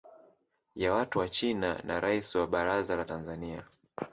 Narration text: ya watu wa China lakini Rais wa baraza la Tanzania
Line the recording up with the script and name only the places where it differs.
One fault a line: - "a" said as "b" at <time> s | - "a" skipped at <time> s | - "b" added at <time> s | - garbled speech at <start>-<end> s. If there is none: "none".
- "lakini" said as "na" at 1.8 s